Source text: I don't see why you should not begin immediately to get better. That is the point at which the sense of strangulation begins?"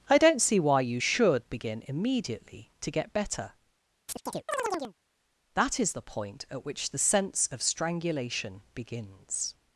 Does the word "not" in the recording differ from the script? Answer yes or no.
yes